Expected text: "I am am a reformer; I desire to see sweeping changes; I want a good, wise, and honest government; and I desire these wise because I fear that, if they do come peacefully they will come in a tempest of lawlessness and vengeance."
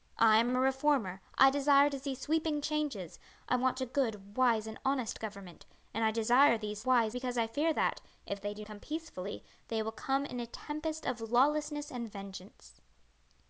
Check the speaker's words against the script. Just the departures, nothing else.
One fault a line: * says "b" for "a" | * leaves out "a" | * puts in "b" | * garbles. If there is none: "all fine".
all fine